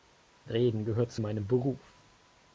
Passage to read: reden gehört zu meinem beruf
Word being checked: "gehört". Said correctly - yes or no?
yes